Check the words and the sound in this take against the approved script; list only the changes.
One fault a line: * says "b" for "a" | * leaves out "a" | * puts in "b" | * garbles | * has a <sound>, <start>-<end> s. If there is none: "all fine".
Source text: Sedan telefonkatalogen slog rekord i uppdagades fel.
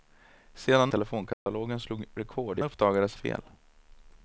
* has a dropout, 1.3-1.5 s